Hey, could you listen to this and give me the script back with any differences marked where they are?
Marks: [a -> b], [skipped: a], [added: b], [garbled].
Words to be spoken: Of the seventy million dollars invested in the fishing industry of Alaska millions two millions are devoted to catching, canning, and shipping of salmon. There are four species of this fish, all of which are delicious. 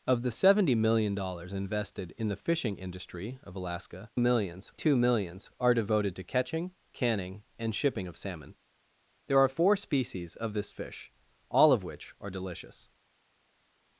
Of the seventy million dollars invested in the fishing industry of Alaska millions two millions are devoted to catching, canning, and shipping of salmon. There are four species of this fish, all of which are delicious.